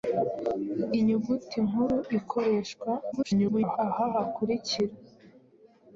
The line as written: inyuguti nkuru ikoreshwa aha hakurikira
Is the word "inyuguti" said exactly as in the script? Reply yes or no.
yes